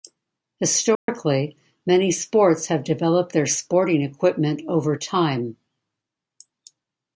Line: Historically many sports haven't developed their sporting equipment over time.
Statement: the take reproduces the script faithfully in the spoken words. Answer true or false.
false